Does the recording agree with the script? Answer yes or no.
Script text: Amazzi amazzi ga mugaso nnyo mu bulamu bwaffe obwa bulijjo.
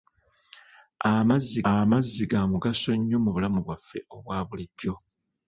yes